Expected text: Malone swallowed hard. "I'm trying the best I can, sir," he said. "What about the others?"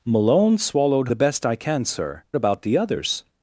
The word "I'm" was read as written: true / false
false